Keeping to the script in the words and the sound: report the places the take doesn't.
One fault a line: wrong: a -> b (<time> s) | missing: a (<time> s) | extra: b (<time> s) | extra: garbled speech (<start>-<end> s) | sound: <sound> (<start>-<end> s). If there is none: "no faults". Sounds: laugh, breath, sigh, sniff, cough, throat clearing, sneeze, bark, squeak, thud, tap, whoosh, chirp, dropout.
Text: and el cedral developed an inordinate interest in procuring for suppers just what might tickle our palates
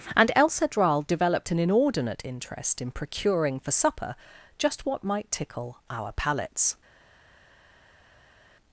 wrong: suppers -> supper (3.7 s)